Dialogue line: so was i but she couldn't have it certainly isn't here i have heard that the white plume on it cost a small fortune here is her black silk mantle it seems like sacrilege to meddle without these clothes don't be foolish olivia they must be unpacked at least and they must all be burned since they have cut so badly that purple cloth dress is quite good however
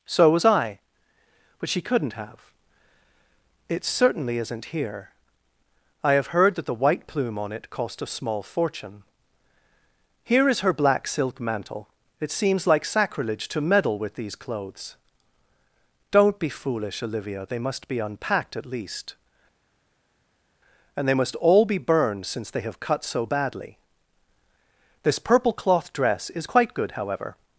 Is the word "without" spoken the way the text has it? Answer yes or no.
no